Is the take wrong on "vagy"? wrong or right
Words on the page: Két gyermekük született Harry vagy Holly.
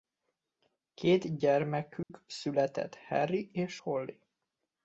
wrong